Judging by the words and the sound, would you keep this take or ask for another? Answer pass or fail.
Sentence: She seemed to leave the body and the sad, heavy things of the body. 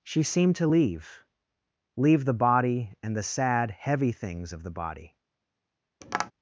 fail